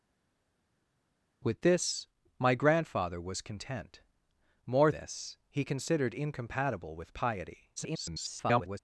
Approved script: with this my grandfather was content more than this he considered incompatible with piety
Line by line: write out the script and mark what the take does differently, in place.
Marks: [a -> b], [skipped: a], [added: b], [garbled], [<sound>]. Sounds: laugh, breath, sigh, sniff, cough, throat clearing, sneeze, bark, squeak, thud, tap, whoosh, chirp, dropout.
with this my grandfather was content more [skipped: than] this he considered incompatible with piety [garbled]